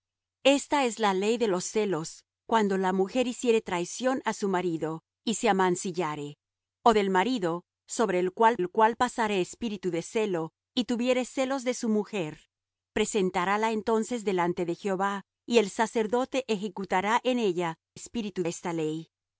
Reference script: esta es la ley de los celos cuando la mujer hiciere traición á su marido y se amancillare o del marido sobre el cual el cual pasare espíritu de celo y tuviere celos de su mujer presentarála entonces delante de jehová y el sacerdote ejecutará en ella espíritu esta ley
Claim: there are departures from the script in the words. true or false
false